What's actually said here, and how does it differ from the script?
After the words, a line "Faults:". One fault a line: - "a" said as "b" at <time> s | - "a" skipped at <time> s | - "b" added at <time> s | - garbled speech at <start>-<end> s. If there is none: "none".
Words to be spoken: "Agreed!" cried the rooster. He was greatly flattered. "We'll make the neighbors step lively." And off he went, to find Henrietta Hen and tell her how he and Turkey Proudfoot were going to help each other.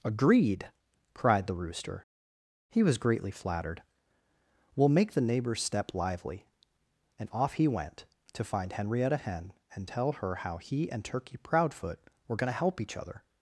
"Agreed!" cried the rooster. He was greatly flattered. "We'll make the neighbors step lively." And off he went, to find Henrietta Hen and tell her how he and Turkey Proudfoot were going to help each other.
Faults:
none